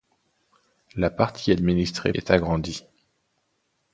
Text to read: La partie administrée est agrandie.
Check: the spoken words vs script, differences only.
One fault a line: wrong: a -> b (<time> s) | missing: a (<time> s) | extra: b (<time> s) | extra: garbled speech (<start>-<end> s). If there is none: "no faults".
no faults